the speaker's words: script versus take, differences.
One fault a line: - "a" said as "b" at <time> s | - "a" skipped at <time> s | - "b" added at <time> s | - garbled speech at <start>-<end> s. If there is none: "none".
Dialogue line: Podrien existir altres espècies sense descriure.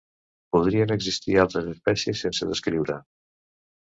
none